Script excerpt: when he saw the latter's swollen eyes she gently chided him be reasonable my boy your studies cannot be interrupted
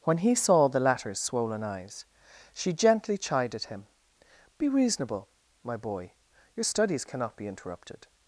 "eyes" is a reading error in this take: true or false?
false